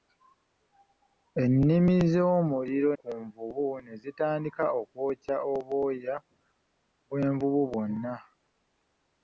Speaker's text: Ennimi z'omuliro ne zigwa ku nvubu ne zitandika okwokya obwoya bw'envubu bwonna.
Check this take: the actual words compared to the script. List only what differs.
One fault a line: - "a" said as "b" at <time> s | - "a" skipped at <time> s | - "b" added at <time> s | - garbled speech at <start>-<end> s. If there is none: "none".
- "ne zigwa" skipped at 2.9 s